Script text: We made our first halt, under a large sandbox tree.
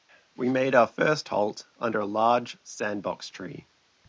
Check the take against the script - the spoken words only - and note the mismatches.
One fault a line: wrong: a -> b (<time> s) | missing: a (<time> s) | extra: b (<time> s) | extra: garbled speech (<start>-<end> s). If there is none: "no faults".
no faults